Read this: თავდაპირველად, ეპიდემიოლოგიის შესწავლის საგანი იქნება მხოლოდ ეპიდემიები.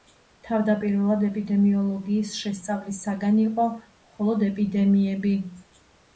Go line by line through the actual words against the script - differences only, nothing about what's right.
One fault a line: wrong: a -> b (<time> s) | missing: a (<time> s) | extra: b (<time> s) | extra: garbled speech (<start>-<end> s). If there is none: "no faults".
wrong: იქნება -> იყო (3.5 s)